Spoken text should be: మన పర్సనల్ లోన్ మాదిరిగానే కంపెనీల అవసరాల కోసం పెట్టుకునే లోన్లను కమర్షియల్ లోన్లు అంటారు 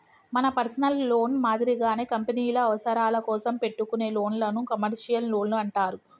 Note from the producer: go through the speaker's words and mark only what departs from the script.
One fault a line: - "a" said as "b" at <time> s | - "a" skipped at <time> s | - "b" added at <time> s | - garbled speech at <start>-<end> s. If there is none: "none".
none